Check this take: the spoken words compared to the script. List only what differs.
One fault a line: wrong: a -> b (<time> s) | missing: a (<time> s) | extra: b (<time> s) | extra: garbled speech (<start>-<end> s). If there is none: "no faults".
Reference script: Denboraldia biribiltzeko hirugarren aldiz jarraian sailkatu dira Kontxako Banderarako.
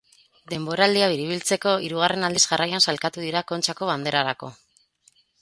no faults